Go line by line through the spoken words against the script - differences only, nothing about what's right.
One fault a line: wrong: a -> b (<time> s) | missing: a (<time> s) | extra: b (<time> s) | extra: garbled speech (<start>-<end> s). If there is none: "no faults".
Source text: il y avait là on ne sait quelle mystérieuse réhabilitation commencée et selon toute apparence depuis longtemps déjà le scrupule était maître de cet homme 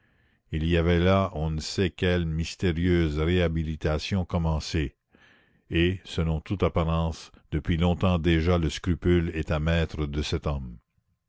no faults